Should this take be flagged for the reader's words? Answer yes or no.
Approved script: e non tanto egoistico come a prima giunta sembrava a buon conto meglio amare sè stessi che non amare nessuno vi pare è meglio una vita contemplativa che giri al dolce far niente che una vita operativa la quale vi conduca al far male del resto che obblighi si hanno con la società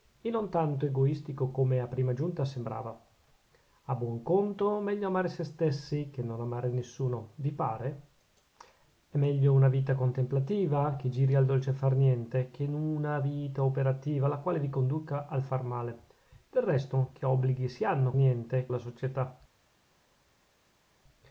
yes